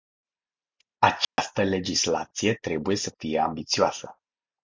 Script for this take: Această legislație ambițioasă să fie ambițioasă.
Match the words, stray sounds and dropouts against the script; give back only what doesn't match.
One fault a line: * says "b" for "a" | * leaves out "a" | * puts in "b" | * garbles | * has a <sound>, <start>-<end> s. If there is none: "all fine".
* has a dropout, 1.2-1.4 s
* says "trebuie" for "ambițioasă"